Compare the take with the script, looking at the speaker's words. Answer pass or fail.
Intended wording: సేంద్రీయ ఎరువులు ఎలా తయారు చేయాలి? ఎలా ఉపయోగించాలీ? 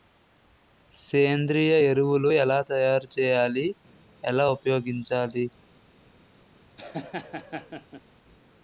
pass